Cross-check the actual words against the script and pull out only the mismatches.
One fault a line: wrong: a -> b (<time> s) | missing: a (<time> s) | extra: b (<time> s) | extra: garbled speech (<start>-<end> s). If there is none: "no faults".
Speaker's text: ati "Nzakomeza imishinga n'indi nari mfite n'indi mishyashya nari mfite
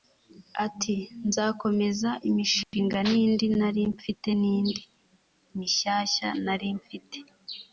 no faults